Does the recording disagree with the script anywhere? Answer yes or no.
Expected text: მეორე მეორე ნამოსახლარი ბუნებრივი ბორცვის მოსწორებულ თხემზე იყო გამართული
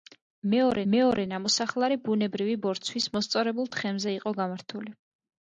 no